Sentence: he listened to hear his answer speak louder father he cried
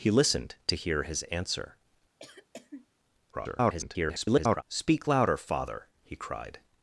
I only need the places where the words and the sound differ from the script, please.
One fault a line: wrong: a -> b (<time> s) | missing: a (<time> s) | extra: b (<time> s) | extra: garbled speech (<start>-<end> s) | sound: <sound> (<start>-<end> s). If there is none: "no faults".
sound: cough (2.2-2.9 s)
extra: garbled speech (3.3-4.6 s)